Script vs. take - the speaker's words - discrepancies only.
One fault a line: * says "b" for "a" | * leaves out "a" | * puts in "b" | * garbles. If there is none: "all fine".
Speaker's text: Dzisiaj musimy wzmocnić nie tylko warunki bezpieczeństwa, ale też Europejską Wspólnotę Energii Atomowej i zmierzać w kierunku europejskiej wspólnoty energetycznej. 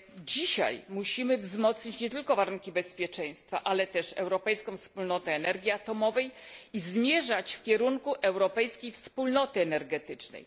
all fine